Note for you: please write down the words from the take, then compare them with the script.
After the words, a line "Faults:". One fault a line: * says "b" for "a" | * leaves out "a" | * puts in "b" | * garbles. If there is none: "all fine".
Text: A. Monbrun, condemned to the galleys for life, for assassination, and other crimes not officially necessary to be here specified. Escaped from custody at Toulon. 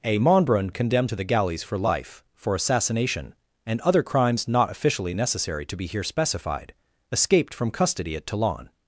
A. Monbrun, condemned to the galleys for life, for assassination, and other crimes not officially necessary to be here specified. Escaped from custody at Toulon.
Faults:
all fine